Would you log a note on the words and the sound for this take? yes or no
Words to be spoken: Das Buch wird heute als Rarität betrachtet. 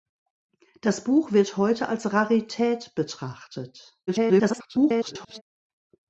yes